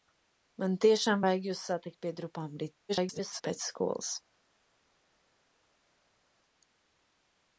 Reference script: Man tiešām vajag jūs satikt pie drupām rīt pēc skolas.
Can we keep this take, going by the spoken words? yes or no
no